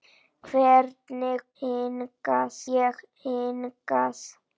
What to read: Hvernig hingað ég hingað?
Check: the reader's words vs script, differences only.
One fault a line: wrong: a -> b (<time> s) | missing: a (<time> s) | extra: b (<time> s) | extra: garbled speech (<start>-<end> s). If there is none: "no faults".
no faults